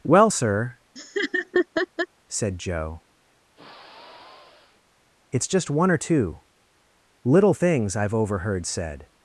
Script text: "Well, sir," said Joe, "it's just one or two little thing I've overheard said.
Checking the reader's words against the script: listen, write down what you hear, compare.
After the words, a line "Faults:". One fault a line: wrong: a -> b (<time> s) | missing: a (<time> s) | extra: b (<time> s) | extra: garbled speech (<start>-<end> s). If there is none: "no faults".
"Well, sir," said Joe, "it's just one or two little things I've overheard said.
Faults:
wrong: thing -> things (7.5 s)